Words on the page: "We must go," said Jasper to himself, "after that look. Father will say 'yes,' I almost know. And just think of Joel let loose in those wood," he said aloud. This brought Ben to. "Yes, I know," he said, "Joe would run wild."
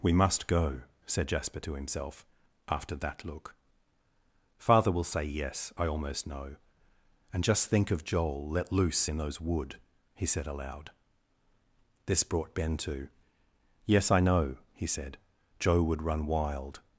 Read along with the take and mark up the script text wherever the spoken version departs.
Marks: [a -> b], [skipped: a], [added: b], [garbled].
"We must go," said Jasper to himself, "after that look. Father will say 'yes,' I almost know. And just think of Joel let loose in those wood," he said aloud. This brought Ben to. "Yes, I know," he said, "Joe would run wild."